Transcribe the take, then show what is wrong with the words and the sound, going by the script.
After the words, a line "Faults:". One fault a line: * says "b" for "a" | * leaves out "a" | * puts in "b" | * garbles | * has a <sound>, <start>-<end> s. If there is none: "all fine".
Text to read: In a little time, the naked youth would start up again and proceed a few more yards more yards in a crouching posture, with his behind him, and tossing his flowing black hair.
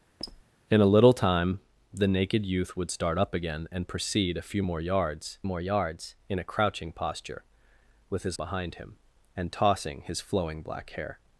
In a little time, the naked youth would start up again and proceed a few more yards more yards in a crouching posture, with his behind him, and tossing his flowing black hair.
Faults:
* has a squeak, 0.2-0.4 s